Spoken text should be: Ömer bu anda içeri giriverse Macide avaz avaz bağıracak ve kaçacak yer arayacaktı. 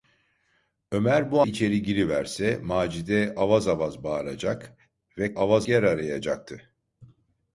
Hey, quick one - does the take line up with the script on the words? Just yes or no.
no